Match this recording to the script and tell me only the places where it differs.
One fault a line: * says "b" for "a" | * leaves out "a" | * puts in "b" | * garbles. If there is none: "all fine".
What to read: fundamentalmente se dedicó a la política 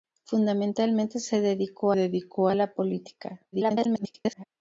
* puts in "dedicó"
* garbles